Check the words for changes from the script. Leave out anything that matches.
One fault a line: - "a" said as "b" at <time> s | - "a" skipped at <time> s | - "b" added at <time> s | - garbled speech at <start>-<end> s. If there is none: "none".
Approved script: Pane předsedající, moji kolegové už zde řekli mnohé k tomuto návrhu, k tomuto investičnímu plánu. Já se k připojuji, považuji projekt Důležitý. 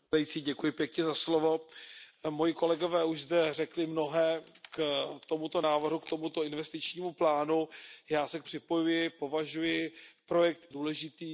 none